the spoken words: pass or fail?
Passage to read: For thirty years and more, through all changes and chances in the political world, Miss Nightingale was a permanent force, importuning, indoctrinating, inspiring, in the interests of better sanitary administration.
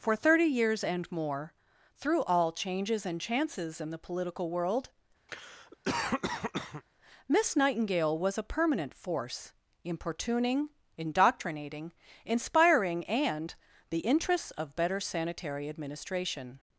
fail